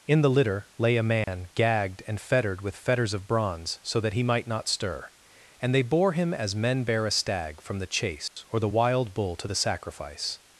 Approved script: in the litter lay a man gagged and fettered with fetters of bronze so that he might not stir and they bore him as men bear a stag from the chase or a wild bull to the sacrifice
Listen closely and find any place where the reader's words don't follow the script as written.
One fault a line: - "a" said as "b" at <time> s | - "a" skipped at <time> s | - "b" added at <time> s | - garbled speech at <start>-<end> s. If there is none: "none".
- "a" said as "the" at 8.6 s